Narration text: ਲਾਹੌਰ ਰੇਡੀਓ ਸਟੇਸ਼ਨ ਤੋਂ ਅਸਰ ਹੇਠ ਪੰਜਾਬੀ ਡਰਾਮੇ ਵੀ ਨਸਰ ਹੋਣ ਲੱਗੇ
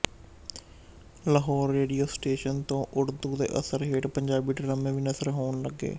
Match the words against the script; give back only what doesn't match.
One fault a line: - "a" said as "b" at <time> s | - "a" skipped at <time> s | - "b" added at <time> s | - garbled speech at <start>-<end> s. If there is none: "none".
- "ਉਰਦੂ ਦੇ" added at 2.9 s